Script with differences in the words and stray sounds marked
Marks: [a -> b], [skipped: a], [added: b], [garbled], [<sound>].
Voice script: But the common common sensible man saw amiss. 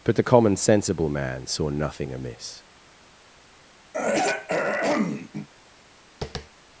But the common [skipped: common] sensible man saw [added: nothing] amiss. [throat clearing] [tap]